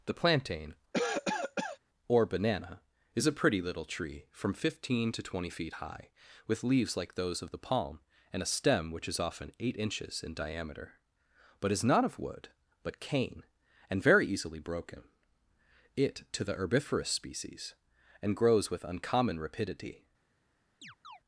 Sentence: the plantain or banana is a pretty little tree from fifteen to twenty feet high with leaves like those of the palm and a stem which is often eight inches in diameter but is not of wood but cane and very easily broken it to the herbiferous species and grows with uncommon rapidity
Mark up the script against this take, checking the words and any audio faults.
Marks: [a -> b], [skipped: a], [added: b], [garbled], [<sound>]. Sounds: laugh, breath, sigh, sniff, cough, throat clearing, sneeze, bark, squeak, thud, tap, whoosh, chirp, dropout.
the plantain [cough] or banana is a pretty little tree from fifteen to twenty feet high with leaves like those of the palm and a stem which is often eight inches in diameter but is not of wood but cane and very easily broken it to the herbiferous species and grows with uncommon rapidity [chirp]